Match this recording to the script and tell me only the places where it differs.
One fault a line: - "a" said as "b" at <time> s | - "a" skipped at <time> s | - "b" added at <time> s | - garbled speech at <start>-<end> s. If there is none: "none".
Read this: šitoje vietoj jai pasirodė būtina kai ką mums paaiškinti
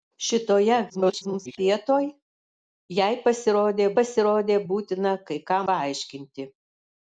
- garbled speech at 0.9-1.6 s
- "pasirodė" added at 4.0 s
- "mums" skipped at 5.6 s